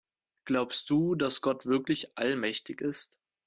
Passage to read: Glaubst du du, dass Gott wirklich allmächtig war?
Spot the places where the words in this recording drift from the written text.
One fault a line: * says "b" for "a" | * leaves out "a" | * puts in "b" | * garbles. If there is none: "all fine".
* leaves out "du"
* says "ist" for "war"